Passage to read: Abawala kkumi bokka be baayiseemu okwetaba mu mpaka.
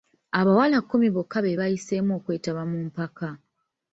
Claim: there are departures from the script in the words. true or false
false